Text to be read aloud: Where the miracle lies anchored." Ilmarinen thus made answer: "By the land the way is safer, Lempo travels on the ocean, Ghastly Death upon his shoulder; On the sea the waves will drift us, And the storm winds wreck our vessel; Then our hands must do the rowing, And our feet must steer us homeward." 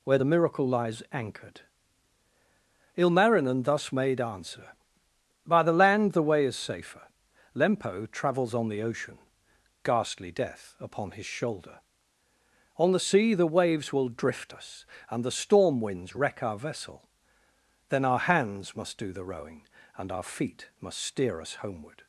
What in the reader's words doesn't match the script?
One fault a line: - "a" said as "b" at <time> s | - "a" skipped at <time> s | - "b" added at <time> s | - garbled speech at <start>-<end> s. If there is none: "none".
none